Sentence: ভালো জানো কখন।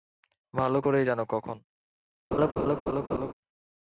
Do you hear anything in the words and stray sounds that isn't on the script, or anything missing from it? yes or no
yes